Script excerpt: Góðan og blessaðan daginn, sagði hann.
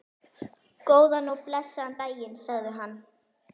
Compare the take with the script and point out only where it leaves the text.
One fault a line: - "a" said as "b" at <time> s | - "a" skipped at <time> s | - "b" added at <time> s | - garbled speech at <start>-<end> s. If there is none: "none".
none